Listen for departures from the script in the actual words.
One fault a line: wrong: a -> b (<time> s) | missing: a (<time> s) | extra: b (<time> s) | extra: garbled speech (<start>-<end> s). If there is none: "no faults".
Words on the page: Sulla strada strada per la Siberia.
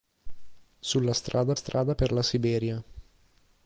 no faults